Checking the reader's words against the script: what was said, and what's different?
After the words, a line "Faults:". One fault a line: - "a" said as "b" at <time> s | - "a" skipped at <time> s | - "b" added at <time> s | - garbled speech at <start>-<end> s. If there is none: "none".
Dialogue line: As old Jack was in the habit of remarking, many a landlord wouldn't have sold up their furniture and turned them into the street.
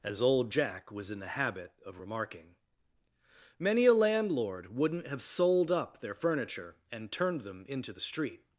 As old Jack was in the habit of remarking, many a landlord wouldn't have sold up their furniture and turned them into the street.
Faults:
none